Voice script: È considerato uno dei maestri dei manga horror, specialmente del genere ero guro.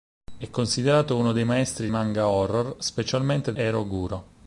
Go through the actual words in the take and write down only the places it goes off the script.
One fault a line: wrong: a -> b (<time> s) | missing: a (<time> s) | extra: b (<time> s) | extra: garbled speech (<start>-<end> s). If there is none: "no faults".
missing: dei (1.9 s)
missing: del genere (3.5 s)